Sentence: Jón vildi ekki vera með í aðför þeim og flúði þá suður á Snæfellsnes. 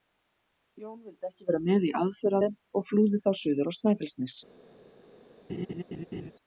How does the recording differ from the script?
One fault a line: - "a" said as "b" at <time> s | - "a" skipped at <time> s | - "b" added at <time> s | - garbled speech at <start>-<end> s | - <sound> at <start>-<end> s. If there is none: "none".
- laugh at 5.5-6.3 s